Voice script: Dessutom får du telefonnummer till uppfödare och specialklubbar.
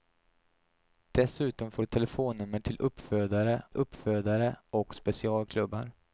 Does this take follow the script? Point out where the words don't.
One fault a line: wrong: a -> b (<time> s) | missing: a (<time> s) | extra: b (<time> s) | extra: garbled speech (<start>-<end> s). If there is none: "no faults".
extra: uppfödare (3.7 s)